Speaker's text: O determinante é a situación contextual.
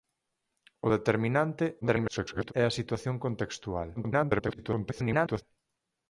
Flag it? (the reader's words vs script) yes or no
yes